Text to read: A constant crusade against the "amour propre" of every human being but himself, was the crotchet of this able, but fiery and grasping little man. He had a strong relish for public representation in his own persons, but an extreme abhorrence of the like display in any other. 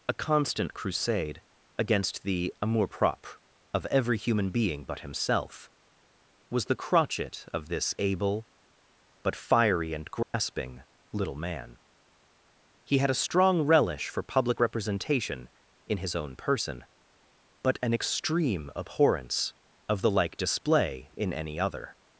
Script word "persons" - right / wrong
wrong